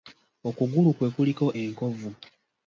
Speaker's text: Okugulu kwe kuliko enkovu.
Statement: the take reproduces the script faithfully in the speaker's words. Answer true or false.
true